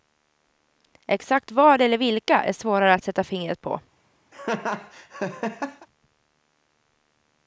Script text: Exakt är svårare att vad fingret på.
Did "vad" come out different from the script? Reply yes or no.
yes